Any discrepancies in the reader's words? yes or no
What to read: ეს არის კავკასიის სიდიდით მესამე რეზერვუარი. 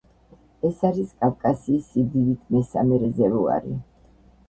no